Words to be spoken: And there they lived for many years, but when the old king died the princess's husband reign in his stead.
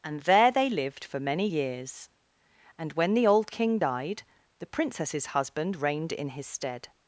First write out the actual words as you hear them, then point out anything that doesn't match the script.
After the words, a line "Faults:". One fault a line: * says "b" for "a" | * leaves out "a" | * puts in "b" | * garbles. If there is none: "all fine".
And there they lived for many years, and when the old king died the princess's husband reigned in his stead.
Faults:
* says "and" for "but"
* says "reigned" for "reign"